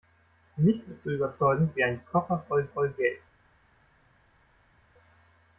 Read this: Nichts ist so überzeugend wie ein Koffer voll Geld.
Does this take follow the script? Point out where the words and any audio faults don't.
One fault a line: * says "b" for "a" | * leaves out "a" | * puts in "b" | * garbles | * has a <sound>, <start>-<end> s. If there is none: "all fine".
* puts in "voll"